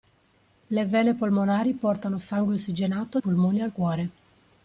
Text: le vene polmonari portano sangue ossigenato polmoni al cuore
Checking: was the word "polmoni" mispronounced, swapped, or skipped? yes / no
no